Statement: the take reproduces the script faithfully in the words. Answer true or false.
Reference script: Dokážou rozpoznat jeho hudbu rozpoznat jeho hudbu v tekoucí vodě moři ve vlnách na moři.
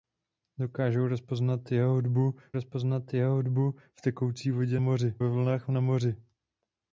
true